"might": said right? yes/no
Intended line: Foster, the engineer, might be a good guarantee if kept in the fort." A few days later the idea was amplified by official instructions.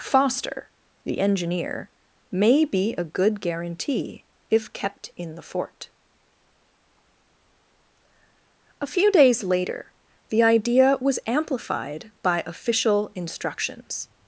no